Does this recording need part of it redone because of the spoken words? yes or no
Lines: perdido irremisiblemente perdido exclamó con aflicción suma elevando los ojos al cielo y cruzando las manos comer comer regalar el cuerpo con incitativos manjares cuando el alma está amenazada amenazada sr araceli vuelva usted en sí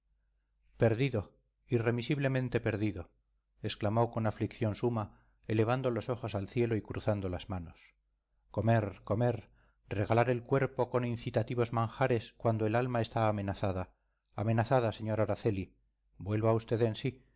no